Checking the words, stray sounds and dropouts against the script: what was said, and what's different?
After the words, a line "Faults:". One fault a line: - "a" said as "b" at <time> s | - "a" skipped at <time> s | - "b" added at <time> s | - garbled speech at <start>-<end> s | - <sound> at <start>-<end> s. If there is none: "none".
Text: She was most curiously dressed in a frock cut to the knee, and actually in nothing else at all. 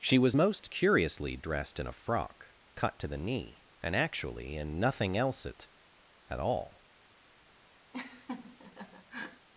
She was most curiously dressed in a frock cut to the knee, and actually in nothing else at at all.
Faults:
- "at" added at 6.3 s
- laugh at 7.9-9.5 s